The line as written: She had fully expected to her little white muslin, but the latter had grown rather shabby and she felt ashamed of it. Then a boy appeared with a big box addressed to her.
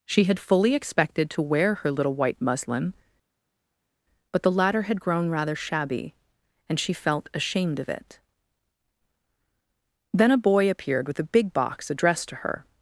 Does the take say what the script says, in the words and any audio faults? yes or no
no